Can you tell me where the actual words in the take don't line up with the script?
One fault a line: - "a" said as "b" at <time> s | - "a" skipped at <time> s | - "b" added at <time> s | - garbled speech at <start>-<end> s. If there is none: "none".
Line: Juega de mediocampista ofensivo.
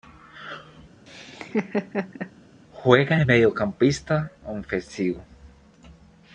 none